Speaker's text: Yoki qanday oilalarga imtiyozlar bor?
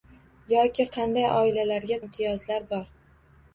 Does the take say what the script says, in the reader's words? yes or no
yes